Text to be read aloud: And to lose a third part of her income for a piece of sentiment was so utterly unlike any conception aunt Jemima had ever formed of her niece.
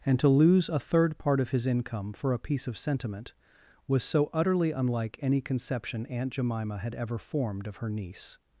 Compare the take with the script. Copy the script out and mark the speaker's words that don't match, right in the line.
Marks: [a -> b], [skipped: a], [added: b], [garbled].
And to lose a third part of [her -> his] income for a piece of sentiment was so utterly unlike any conception aunt Jemima had ever formed of her niece.